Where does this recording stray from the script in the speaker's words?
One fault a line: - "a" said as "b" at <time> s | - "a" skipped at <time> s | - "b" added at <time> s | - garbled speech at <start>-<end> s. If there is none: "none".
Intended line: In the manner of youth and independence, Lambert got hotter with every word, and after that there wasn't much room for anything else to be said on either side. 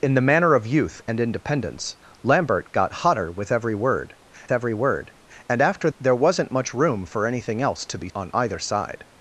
- "every word" added at 4.5 s
- "that" skipped at 5.9 s
- "said" skipped at 8.1 s